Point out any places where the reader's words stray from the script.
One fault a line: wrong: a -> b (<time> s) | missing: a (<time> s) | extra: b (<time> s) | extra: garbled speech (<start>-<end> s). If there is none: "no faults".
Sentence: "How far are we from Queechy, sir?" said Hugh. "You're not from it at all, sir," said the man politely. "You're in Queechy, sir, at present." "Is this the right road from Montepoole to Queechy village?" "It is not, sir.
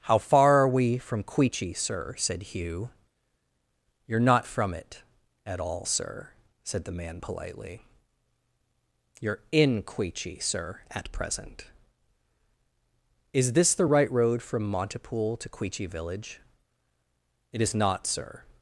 no faults